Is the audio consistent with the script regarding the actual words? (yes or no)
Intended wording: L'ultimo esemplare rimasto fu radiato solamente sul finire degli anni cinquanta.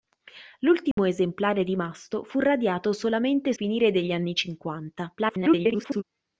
no